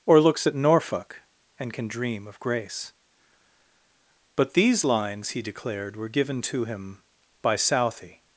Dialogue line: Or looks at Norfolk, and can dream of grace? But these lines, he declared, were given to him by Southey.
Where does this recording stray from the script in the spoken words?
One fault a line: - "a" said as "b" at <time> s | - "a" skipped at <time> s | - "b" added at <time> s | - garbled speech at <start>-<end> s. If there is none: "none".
none